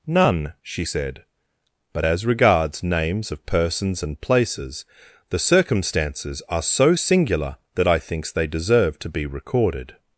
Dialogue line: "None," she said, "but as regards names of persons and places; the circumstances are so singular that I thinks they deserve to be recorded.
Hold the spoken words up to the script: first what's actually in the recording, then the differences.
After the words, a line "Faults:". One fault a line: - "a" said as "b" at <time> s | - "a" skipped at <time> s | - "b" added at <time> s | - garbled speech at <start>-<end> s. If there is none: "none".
"None," she said, "but as regards names of persons and places; the circumstances are so singular that I thinks they deserve to be recorded.
Faults:
none